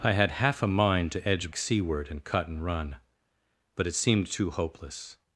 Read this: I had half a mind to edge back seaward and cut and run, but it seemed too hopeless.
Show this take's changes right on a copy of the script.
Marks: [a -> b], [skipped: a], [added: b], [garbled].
I had half a mind to edge [skipped: back] seaward and cut and run, but it seemed too hopeless.